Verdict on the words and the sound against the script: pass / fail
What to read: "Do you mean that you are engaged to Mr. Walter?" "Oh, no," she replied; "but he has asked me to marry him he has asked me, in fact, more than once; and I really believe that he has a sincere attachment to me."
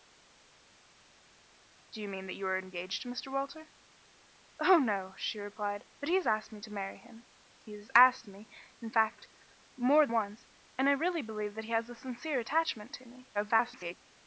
fail